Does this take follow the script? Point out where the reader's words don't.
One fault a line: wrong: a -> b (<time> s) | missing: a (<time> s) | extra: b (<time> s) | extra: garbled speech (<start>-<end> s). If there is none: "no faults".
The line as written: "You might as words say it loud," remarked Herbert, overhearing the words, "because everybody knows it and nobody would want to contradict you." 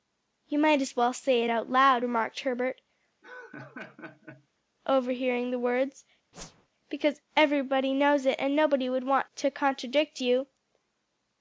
wrong: words -> well (0.9 s)
extra: out (1.5 s)